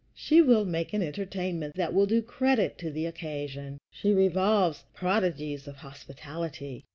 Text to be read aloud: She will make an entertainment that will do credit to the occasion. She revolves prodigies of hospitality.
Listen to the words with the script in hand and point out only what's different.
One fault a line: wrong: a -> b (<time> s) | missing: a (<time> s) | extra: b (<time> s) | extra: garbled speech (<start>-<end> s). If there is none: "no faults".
no faults